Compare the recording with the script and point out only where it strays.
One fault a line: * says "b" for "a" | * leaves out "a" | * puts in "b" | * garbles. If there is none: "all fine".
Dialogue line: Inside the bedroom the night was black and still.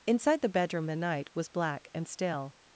all fine